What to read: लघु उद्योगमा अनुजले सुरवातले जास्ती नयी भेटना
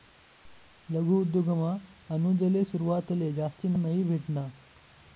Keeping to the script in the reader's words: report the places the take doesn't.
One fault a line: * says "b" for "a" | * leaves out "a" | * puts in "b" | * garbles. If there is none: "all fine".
all fine